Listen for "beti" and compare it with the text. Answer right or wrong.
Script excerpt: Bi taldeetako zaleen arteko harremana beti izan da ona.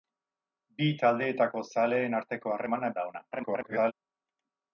wrong